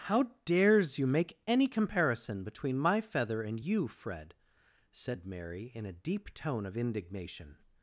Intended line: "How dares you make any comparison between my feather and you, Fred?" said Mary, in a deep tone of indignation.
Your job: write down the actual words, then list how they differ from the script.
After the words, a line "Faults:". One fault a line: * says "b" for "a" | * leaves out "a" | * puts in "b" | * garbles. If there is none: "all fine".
"How dares you make any comparison between my feather and you, Fred?" said Mary, in a deep tone of indignation.
Faults:
all fine